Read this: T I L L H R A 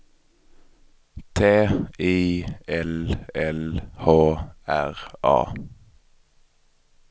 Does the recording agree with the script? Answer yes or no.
yes